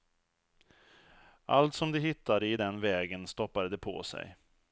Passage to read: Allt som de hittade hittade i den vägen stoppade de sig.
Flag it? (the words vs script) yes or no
yes